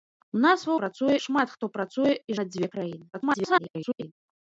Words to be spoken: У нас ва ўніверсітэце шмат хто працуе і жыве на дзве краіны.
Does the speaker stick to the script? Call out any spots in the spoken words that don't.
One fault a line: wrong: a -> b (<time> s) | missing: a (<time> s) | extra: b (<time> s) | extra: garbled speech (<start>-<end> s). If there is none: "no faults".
wrong: ўніверсітэце -> працуе (0.8 s)
missing: жыве (2.3 s)
extra: garbled speech (3.1-4.1 s)